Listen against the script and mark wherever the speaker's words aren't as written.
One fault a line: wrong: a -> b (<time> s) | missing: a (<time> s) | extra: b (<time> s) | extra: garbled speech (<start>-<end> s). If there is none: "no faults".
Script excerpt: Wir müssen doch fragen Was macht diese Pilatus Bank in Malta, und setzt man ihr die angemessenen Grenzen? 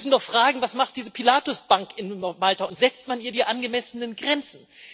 no faults